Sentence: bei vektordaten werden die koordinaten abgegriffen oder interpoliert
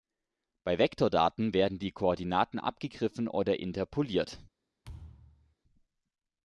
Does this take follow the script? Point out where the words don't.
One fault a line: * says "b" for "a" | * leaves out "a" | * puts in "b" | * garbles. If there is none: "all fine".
all fine